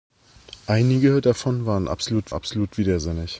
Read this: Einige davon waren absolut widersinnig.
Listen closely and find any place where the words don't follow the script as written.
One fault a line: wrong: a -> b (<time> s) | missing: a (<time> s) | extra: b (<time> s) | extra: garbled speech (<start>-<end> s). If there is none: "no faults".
extra: absolut (2.3 s)